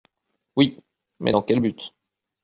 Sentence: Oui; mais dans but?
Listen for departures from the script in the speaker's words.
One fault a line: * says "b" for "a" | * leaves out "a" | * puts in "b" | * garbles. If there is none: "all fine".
* puts in "quel"